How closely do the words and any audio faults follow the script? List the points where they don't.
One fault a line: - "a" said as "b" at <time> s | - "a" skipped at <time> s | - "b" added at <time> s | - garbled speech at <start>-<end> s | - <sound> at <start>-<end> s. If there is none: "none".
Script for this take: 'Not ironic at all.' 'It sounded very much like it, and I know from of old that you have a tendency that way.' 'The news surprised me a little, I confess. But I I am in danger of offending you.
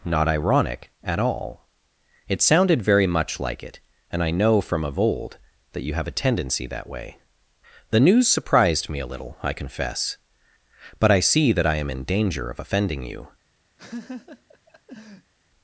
- "see that" added at 11.2 s
- laugh at 13.8-15.3 s